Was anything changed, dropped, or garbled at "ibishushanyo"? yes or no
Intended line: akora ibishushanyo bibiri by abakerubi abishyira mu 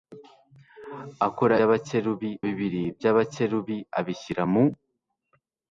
yes